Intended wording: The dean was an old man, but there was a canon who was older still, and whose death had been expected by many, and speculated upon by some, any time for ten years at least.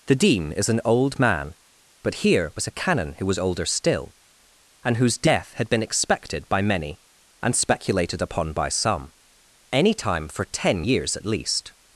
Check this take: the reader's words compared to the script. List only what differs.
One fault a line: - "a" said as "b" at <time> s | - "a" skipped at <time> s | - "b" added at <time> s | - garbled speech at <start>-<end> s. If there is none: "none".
- "was" said as "is" at 0.5 s
- "there" said as "here" at 2.1 s